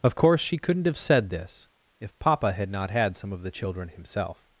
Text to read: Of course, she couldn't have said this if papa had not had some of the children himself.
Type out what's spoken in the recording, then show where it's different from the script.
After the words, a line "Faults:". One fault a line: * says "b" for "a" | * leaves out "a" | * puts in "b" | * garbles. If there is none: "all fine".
Of course, she couldn't have said this if papa had not had some of the children himself.
Faults:
all fine